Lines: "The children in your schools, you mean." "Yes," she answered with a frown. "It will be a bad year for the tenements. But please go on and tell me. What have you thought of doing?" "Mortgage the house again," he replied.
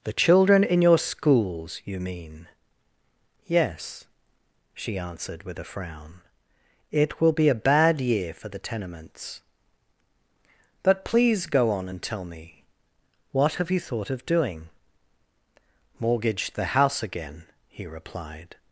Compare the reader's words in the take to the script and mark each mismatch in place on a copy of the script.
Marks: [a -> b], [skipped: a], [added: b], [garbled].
"The children in your schools, you mean." "Yes," she answered with a frown. "It will be a bad year for the tenements. But please go on and tell me. What have you thought of doing?" "Mortgage the house again," he replied.